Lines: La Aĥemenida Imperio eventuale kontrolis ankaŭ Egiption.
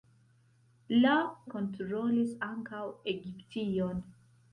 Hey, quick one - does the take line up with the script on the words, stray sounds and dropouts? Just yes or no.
no